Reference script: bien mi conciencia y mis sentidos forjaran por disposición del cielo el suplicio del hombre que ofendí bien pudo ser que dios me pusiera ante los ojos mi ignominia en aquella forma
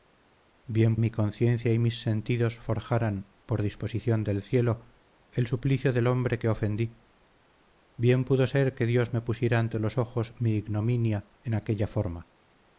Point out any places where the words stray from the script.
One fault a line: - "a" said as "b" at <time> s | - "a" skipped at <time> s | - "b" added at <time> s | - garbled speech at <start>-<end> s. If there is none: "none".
none